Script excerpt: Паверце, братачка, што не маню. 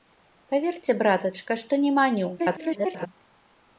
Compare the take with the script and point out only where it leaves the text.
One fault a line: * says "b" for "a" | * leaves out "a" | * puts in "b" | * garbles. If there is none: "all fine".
* garbles